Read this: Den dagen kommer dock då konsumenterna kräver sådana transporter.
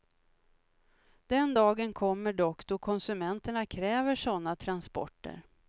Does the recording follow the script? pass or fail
pass